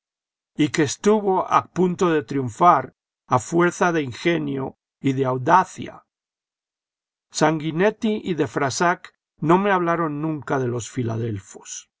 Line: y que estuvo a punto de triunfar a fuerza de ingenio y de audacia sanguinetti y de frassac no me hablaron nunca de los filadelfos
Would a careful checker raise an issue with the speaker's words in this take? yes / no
no